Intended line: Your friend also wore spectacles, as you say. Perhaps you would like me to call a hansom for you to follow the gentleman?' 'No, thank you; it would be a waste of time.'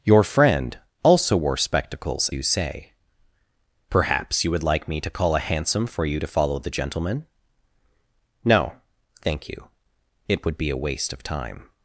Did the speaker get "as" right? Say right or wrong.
wrong